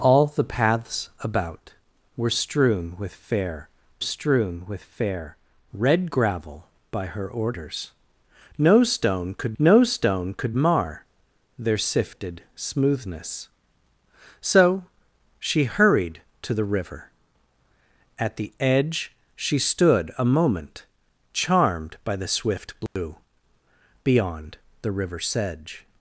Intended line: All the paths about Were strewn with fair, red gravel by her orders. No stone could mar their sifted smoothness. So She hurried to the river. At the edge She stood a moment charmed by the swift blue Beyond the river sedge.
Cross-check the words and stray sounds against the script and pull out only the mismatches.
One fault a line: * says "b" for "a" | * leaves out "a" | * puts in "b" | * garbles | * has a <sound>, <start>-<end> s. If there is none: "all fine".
* puts in "strewn with fair"
* puts in "no stone could"
* has a dropout, 22.9-23.0 s